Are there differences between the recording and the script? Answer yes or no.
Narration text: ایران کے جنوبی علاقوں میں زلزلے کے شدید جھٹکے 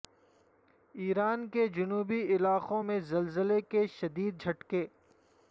no